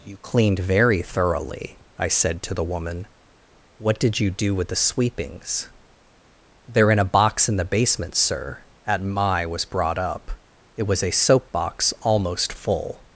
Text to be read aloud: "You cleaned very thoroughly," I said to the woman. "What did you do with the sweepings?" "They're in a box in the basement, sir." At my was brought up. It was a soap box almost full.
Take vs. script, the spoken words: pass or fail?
pass